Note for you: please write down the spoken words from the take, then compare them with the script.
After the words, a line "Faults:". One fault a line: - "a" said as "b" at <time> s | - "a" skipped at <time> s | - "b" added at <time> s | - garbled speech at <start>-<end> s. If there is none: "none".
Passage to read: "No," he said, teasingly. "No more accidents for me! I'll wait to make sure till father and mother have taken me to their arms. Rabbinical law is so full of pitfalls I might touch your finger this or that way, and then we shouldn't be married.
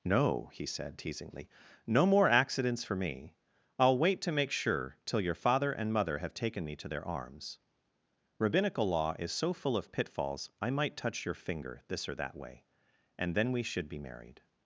"No," he said, teasingly. "No more accidents for me! I'll wait to make sure till your father and mother have taken me to their arms. Rabbinical law is so full of pitfalls I might touch your finger this or that way, and then we should be married.
Faults:
- "your" added at 5.2 s
- "shouldn't" said as "should" at 13.6 s